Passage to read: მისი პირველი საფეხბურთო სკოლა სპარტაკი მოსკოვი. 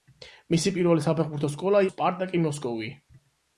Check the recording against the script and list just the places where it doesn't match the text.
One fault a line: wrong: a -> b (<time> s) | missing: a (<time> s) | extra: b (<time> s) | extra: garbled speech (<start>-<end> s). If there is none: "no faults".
no faults